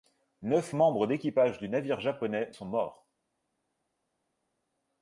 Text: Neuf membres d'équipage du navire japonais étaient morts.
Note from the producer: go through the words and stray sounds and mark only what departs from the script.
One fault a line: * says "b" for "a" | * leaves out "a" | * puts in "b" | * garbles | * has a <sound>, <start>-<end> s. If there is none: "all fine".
* says "sont" for "étaient"